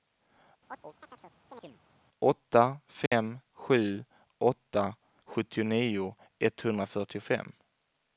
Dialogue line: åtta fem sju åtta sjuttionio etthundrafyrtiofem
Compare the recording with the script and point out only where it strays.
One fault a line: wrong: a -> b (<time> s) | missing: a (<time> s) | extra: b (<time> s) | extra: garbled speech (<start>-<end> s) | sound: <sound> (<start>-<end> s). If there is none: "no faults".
sound: chirp (0.7-1.8 s)
sound: dropout (3.1-3.1 s)